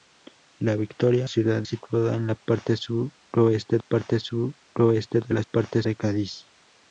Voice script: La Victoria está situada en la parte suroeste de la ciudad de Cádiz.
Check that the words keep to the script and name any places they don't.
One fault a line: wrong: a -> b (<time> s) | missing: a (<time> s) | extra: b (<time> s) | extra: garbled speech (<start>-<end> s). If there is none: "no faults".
wrong: está -> ciudad (1.2 s)
extra: parte suroeste (3.8 s)
wrong: ciudad -> parte (5.4 s)